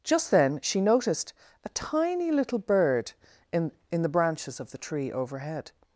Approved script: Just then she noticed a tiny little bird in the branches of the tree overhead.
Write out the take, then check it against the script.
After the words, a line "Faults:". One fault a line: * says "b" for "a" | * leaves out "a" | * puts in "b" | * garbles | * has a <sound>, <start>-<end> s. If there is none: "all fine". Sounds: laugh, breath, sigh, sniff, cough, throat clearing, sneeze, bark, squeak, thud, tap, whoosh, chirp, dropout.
Just then she noticed a tiny little bird in in the branches of the tree overhead.
Faults:
* puts in "in"